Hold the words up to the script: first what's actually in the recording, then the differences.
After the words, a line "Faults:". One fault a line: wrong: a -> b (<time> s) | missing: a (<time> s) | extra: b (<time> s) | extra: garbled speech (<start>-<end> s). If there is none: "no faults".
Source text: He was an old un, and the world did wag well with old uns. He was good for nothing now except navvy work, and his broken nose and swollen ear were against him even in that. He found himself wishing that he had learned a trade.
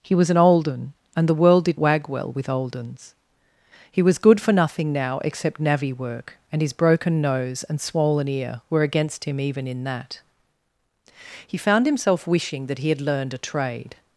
He was an old un, and the world did wag well with old uns. He was good for nothing now except navvy work, and his broken nose and swollen ear were against him even in that. He found himself wishing that he had learned a trade.
Faults:
no faults